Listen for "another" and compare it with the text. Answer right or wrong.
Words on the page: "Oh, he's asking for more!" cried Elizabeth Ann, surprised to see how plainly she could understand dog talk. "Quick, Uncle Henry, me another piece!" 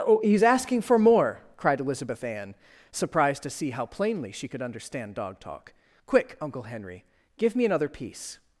right